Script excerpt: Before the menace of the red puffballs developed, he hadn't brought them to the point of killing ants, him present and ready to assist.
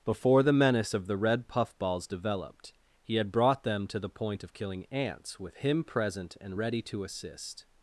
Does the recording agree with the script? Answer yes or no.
no